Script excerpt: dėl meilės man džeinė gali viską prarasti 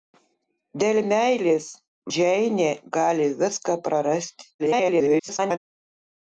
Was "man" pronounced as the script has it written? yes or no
no